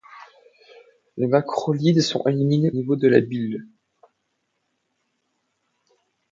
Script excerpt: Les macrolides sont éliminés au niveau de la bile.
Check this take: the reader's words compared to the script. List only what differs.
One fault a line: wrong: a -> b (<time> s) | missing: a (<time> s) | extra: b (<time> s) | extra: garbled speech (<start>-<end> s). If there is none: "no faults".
missing: au (2.7 s)